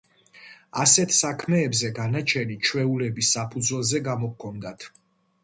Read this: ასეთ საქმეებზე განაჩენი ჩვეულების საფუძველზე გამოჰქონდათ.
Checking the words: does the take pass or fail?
pass